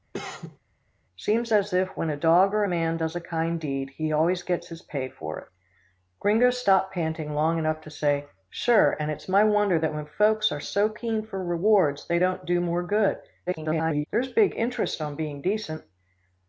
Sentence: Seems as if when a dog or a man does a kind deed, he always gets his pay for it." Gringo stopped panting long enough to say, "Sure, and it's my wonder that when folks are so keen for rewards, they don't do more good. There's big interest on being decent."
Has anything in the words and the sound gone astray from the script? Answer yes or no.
yes